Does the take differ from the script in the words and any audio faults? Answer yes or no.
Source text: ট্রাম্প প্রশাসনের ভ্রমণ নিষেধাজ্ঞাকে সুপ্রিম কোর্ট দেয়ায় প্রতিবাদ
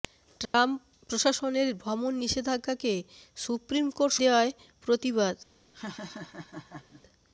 yes